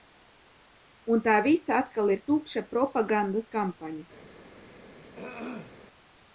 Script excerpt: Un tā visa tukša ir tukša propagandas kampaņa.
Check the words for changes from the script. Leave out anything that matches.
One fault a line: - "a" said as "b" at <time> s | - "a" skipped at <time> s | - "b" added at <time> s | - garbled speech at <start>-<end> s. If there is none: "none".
- "tukša" said as "atkal" at 1.8 s